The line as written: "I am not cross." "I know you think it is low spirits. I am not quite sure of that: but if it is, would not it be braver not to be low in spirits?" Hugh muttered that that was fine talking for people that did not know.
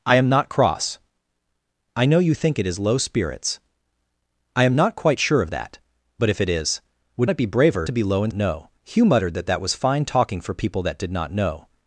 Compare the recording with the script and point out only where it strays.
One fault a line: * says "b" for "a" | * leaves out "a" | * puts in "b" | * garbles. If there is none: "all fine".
* leaves out "not"
* leaves out "not"
* says "know" for "spirits"